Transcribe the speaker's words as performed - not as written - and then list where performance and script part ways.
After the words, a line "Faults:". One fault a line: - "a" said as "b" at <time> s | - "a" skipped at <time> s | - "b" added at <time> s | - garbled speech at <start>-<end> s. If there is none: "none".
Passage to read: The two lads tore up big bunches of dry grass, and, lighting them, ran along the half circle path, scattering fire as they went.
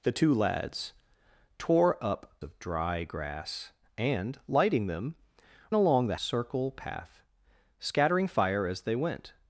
The two lads tore up of dry grass, and, lighting them, along the circle path, scattering fire as they went.
Faults:
- "big bunches" skipped at 2.4 s
- "ran" skipped at 5.2 s
- "half" skipped at 6.2 s